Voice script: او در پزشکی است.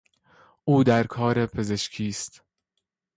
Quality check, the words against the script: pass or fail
fail